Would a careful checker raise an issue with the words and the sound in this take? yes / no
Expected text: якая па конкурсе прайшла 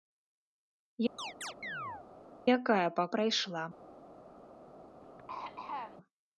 yes